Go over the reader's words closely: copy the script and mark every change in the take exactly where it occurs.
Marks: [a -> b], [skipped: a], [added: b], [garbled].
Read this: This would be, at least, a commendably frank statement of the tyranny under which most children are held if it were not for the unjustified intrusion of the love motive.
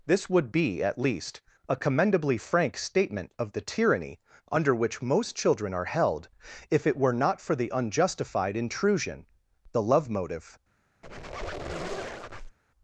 This would be, at least, a commendably frank statement of the tyranny under which most children are held if it were not for the unjustified intrusion [skipped: of] the love motive.